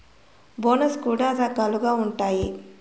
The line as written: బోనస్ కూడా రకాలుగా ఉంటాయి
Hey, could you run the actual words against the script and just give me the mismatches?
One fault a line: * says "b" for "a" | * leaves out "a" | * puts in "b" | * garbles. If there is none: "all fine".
all fine